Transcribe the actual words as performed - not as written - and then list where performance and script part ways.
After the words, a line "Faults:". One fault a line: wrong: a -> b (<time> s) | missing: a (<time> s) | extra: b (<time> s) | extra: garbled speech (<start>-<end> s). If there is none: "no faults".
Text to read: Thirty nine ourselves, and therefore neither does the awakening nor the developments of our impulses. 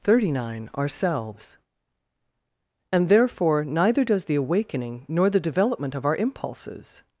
Thirty nine ourselves, and therefore neither does the awakening nor the development of our impulses.
Faults:
wrong: developments -> development (5.4 s)